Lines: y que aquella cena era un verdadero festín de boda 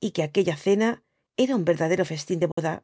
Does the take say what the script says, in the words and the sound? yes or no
no